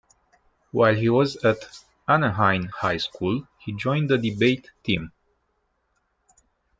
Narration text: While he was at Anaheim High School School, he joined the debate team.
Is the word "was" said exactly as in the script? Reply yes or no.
yes